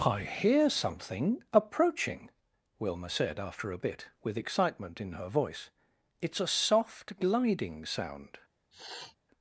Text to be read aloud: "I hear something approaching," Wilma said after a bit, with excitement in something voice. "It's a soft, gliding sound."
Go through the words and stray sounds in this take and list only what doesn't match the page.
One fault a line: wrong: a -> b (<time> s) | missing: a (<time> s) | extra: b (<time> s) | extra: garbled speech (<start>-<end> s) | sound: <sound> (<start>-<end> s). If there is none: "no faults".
wrong: something -> her (5.1 s)
sound: sniff (8.7-9.2 s)